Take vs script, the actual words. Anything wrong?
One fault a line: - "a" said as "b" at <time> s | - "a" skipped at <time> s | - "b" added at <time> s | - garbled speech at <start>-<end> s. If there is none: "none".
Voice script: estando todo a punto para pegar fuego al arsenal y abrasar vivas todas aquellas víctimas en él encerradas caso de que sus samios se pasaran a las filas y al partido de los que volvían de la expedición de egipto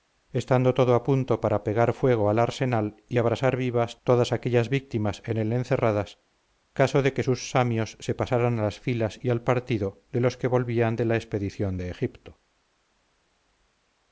none